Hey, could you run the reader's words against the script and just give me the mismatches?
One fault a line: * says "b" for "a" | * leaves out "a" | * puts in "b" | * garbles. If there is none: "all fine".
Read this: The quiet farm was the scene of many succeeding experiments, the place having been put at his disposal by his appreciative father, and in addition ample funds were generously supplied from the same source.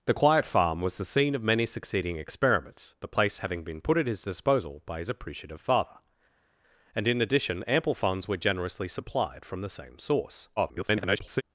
* garbles